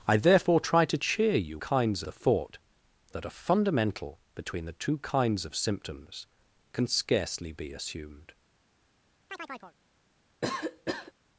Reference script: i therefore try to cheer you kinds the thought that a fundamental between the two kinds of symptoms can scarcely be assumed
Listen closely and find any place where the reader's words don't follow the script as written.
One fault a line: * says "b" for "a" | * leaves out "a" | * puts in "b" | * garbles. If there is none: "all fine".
all fine